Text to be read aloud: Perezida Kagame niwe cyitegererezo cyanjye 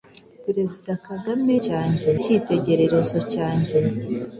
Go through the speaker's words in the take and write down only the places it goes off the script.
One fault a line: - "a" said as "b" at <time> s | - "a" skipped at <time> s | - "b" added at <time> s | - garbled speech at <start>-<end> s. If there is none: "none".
- "niwe" said as "cyanjye" at 1.6 s